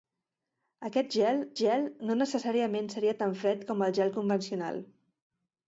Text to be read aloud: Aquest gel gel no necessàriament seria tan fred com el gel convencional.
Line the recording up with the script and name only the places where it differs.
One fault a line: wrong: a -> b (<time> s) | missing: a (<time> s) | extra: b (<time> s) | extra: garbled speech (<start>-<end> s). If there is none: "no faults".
no faults